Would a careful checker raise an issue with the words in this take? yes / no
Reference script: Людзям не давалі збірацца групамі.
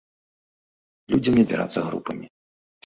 yes